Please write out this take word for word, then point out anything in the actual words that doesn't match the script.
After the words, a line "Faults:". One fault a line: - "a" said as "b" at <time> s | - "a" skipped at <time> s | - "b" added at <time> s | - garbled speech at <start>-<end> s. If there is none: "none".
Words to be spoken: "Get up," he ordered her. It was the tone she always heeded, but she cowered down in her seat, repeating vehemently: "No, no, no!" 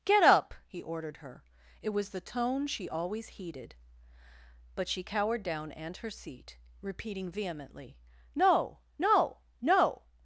"Get up," he ordered her. It was the tone she always heeded, but she cowered down and her seat, repeating vehemently: "No, no, no!"
Faults:
- "in" said as "and" at 5.7 s